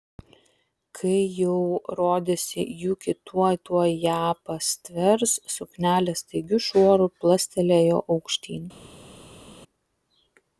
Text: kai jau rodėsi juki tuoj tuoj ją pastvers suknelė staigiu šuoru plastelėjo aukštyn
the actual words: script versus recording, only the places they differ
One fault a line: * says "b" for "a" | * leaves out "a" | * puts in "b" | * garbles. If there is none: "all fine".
all fine